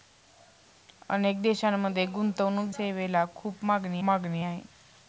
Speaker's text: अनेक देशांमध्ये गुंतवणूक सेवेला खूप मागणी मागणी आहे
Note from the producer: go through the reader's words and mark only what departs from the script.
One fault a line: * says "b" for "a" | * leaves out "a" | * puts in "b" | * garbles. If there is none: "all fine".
all fine